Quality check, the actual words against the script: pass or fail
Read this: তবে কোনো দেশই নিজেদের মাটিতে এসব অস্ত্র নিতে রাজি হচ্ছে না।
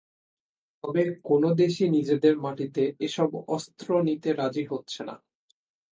pass